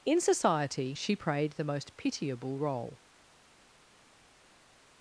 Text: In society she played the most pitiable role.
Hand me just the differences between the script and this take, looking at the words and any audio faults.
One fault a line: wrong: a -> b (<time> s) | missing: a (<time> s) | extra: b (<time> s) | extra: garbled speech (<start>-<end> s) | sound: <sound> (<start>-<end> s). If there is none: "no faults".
wrong: played -> prayed (1.1 s)